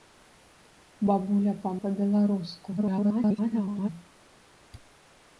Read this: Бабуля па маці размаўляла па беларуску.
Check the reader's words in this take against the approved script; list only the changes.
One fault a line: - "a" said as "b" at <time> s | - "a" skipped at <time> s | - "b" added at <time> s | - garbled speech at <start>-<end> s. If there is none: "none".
- "маці размаўляла" skipped at 1.7 s
- garbled speech at 2.8-3.9 s